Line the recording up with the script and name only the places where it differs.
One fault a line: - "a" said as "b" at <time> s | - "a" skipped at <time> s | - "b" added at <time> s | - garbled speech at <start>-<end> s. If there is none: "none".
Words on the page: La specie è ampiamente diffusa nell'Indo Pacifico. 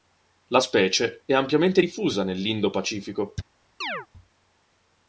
none